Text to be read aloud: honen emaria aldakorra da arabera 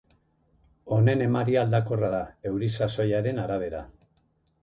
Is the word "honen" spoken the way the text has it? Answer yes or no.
yes